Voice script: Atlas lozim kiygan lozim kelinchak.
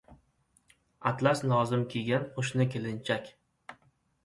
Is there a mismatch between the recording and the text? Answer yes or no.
yes